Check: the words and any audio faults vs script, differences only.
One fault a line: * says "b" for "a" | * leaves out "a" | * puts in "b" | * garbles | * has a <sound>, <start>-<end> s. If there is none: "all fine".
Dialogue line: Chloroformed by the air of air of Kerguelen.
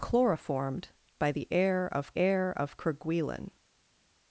all fine